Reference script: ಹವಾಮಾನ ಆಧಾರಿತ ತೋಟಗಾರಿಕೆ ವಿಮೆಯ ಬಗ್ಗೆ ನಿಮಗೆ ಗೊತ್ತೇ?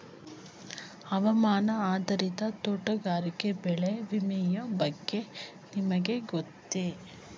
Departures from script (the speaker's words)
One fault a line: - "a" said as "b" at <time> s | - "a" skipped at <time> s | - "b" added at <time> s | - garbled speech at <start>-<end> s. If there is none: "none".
- "ಬೆಳೆ" added at 3.6 s